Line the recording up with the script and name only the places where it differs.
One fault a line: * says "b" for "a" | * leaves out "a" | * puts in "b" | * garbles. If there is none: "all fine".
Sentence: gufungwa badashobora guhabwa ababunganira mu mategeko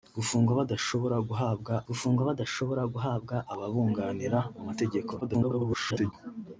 * puts in "gufungwa badashobora guhabwa"
* garbles